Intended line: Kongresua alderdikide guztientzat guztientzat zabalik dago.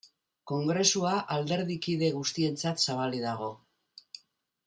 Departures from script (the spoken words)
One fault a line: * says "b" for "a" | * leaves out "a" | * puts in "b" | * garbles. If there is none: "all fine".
* leaves out "guztientzat"